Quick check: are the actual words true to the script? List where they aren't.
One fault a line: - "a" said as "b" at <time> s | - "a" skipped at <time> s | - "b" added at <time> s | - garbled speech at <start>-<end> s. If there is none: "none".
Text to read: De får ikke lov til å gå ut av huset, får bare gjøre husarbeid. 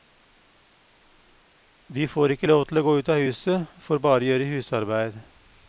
none